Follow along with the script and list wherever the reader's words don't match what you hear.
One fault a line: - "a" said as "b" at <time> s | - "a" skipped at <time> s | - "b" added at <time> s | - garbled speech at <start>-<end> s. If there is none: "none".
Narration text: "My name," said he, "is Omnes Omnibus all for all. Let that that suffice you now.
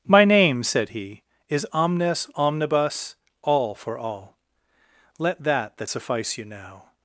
none